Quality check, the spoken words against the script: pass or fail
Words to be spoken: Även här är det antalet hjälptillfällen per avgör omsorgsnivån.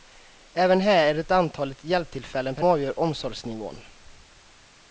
pass